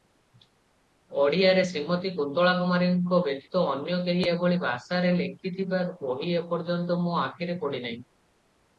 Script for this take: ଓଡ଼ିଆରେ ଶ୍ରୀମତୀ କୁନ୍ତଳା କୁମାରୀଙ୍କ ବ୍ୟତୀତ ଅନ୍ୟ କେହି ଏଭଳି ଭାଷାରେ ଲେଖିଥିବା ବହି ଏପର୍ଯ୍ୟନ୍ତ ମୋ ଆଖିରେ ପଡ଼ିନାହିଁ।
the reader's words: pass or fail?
pass